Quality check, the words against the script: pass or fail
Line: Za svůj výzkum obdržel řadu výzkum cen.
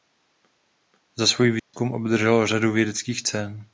fail